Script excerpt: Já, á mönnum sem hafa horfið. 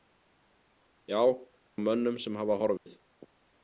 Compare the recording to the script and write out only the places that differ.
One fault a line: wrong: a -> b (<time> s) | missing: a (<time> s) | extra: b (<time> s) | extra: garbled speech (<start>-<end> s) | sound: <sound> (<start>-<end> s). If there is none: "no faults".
sound: dropout (2.8-2.9 s)